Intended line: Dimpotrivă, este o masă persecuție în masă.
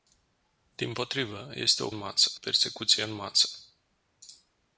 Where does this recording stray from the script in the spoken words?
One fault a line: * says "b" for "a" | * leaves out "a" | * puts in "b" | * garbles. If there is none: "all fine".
all fine